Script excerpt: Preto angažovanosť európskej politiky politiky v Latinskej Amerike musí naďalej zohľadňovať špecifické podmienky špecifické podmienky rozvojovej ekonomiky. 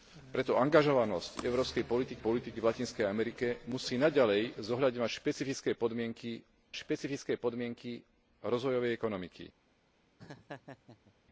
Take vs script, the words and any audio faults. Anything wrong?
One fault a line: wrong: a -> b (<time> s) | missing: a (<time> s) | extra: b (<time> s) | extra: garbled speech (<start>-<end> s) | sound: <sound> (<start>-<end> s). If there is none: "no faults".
sound: laugh (10.2-11.1 s)